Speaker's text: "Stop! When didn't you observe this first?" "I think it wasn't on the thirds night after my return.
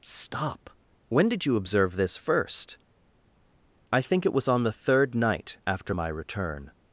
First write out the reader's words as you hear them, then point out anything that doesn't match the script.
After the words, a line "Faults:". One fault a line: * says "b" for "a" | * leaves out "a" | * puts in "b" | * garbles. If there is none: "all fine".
"Stop! When did you observe this first?" "I think it was on the third night after my return.
Faults:
* says "did" for "didn't"
* says "was" for "wasn't"
* says "third" for "thirds"